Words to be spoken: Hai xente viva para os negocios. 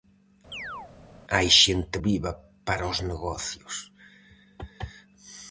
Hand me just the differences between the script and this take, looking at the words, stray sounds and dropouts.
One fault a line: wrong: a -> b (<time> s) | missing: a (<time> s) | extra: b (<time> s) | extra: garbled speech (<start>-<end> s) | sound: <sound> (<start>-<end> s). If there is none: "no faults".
sound: chirp (0.5-0.9 s)